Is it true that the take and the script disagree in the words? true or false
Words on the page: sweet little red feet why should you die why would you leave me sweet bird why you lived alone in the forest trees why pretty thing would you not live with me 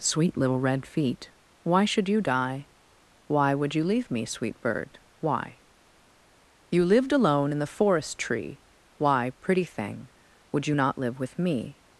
true